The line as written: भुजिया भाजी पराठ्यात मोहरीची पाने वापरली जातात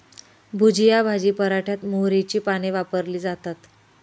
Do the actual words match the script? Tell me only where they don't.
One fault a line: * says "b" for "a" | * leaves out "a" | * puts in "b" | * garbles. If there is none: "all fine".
all fine